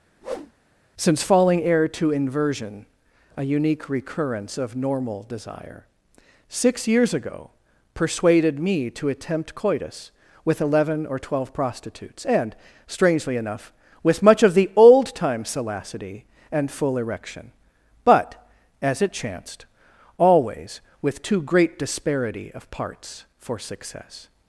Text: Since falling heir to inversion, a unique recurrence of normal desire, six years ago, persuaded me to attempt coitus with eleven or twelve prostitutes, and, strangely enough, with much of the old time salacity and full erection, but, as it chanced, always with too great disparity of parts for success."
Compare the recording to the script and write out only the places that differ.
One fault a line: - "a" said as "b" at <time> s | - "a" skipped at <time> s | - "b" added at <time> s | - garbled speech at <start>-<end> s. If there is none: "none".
none